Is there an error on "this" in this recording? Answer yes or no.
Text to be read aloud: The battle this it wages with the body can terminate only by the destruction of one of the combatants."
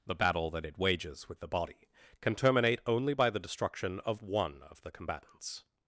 yes